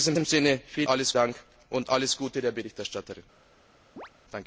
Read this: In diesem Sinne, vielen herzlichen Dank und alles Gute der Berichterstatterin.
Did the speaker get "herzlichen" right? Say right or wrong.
wrong